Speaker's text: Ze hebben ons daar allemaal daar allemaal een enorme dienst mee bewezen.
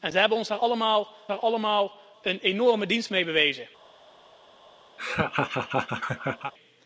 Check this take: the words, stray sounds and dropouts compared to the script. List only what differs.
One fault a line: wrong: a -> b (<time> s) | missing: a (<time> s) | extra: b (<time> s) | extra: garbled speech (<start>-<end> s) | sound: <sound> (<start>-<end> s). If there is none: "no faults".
sound: laugh (5.0-6.5 s)